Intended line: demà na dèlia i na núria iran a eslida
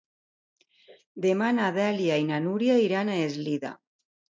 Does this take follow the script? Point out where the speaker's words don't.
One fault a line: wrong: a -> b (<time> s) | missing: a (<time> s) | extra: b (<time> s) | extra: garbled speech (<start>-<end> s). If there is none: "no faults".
no faults